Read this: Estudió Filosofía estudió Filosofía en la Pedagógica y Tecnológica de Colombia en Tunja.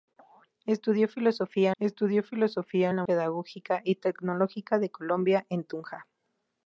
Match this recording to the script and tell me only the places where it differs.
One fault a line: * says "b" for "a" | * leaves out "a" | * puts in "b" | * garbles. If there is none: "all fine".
all fine